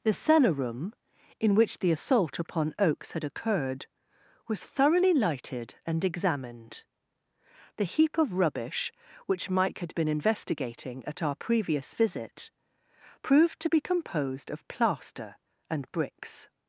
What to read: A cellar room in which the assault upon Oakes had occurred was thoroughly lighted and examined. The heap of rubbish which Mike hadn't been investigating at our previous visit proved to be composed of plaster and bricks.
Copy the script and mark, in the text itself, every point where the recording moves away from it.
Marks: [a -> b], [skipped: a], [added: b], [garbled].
[A -> The] cellar room in which the assault upon Oakes had occurred was thoroughly lighted and examined. The heap of rubbish which Mike [hadn't -> had] been investigating at our previous visit proved to be composed of plaster and bricks.